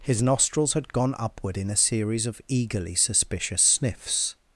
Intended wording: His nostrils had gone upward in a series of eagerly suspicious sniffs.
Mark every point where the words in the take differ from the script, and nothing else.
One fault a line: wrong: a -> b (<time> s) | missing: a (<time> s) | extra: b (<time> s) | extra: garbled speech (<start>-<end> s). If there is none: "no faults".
no faults